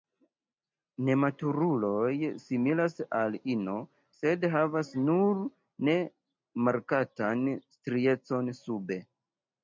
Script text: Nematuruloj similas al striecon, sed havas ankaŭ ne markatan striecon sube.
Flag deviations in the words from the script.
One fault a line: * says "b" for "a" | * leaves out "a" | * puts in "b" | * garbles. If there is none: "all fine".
* says "ino" for "striecon"
* says "nur" for "ankaŭ"